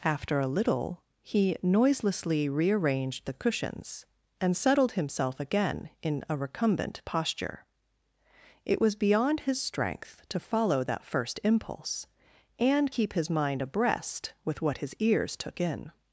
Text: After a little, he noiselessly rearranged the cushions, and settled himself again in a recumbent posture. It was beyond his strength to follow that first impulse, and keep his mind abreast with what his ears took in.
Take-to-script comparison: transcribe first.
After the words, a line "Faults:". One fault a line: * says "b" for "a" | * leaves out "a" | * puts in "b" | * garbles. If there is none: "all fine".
After a little, he noiselessly rearranged the cushions, and settled himself again in a recumbent posture. It was beyond his strength to follow that first impulse, and keep his mind abreast with what his ears took in.
Faults:
all fine